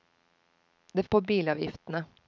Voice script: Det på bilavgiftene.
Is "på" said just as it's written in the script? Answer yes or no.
yes